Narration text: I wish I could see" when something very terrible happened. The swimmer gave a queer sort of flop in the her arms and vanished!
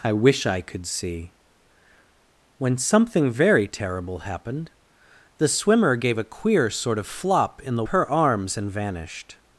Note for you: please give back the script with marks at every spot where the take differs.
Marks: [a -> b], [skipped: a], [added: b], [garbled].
I wish I could see" when something very terrible happened. The swimmer gave a queer sort of flop in the her arms and vanished!